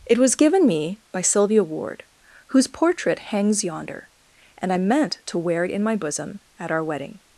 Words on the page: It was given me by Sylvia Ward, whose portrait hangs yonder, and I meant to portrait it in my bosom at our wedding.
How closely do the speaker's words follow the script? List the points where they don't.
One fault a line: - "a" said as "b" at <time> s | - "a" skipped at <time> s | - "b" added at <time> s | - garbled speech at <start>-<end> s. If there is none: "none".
- "portrait" said as "wear" at 5.4 s